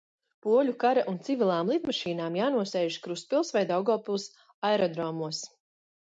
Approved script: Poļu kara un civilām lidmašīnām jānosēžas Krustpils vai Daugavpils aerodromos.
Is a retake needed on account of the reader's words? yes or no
no